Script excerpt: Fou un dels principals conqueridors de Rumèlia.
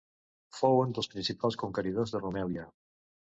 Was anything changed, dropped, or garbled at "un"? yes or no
no